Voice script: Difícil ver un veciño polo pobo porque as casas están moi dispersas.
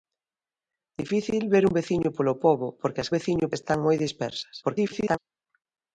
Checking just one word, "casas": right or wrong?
wrong